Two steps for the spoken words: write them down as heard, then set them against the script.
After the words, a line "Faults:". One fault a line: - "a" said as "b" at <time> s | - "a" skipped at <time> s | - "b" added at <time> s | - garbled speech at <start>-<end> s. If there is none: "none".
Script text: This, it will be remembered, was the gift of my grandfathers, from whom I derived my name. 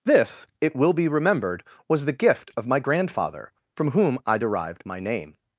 This, it will be remembered, was the gift of my grandfather, from whom I derived my name.
Faults:
- "grandfathers" said as "grandfather" at 2.8 s